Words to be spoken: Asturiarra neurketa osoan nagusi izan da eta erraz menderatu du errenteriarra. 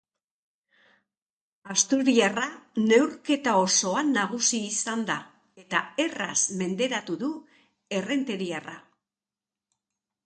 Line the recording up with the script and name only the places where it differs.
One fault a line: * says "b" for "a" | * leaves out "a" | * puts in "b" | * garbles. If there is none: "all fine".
all fine